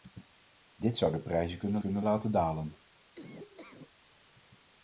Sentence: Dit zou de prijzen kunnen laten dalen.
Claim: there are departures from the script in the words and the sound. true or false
true